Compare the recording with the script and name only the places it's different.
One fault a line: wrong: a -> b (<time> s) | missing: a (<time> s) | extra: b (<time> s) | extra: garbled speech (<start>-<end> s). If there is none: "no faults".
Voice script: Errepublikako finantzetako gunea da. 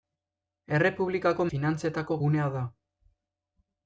no faults